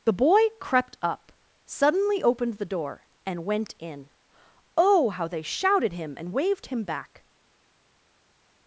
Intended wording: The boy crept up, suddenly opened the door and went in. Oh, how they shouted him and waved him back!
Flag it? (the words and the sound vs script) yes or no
no